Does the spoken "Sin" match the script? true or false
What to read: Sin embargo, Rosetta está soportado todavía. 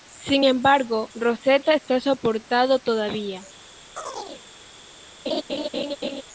true